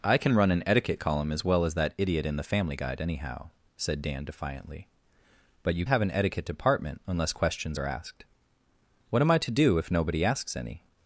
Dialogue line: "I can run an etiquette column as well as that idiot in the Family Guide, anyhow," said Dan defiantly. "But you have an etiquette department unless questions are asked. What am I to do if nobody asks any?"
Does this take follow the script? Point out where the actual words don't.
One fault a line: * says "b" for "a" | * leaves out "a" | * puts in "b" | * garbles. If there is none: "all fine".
all fine